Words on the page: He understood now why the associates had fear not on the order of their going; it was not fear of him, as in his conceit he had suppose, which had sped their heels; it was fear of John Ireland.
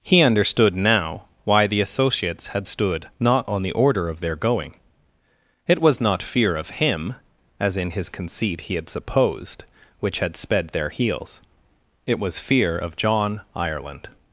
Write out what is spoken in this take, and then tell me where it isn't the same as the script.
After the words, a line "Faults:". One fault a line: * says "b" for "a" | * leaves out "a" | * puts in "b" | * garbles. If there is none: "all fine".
He understood now why the associates had stood not on the order of their going; it was not fear of him, as in his conceit he had supposed, which had sped their heels; it was fear of John Ireland.
Faults:
* says "stood" for "fear"
* says "supposed" for "suppose"